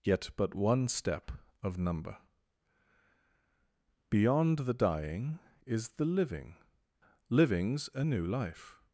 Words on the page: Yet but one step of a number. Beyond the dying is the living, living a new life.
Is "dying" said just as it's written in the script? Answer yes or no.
yes